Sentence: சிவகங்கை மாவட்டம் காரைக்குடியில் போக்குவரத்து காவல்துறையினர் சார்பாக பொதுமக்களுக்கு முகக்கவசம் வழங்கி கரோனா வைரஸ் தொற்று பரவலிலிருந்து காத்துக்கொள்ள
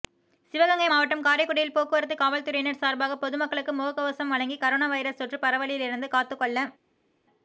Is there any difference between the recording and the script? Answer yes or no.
no